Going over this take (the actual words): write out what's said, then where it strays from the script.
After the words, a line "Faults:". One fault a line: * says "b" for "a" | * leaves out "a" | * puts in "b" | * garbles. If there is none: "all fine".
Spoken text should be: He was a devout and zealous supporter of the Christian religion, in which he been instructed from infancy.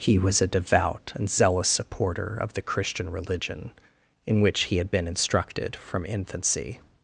He was a devout and zealous supporter of the Christian religion, in which he had been instructed from infancy.
Faults:
* puts in "had"